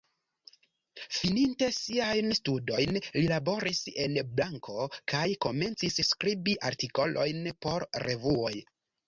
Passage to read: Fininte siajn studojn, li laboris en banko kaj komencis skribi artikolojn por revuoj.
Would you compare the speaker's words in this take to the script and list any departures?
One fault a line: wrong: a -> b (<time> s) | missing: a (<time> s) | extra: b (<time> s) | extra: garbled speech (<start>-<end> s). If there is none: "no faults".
no faults